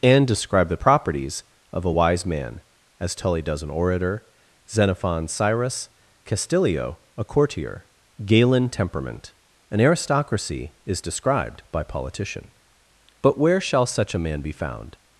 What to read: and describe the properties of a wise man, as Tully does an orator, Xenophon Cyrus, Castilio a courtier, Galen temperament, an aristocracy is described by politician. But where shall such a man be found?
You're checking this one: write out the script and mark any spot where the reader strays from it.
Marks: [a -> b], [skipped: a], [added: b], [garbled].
and describe the properties of a wise man, as Tully does an orator, Xenophon Cyrus, Castilio a courtier, Galen temperament, an aristocracy is described by politician. But where shall such a man be found?